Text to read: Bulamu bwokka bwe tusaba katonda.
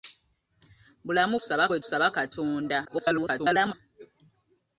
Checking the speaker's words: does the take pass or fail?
fail